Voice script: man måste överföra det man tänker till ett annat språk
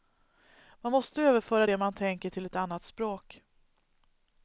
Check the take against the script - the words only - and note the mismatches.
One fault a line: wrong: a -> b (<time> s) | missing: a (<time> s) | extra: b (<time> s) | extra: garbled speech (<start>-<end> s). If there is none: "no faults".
no faults